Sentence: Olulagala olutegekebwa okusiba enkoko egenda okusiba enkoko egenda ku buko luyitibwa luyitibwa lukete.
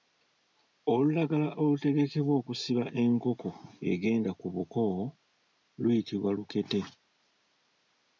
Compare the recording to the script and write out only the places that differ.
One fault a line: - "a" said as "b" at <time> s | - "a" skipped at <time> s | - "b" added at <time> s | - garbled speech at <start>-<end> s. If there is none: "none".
- "okusiba enkoko egenda" skipped at 4.3 s
- "luyitibwa" skipped at 6.3 s